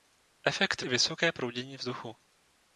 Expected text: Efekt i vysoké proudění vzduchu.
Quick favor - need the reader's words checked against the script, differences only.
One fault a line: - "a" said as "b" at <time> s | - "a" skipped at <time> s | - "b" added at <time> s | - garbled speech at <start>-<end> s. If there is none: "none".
none